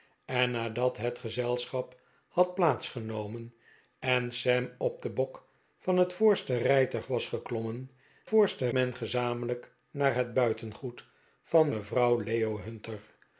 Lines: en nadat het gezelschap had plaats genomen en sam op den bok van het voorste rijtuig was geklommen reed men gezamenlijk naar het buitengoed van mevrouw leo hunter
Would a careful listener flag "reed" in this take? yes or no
yes